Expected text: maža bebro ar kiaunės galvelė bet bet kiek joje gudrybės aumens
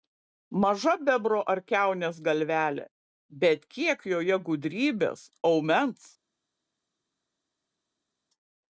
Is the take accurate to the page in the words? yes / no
no